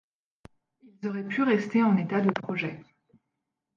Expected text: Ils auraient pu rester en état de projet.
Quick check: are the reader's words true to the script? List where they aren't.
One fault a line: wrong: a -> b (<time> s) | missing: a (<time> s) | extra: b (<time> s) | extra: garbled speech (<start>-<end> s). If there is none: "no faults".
no faults